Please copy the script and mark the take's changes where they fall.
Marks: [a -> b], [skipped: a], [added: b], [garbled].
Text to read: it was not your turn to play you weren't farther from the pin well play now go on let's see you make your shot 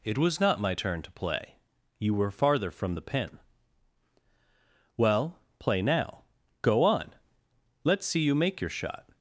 it was not [your -> my] turn to play you [weren't -> were] farther from the pin well play now go on let's see you make your shot